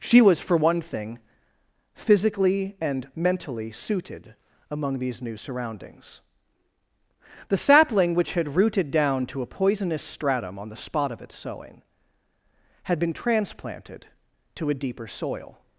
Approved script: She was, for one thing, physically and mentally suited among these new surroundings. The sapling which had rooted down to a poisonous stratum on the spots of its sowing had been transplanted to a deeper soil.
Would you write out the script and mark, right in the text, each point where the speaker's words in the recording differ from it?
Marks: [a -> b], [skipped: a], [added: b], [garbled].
She was, for one thing, physically and mentally suited among these new surroundings. The sapling which had rooted down to a poisonous stratum on the [spots -> spot] of its sowing had been transplanted to a deeper soil.